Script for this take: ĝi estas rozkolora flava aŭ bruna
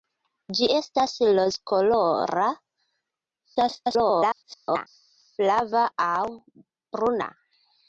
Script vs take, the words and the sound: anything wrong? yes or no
yes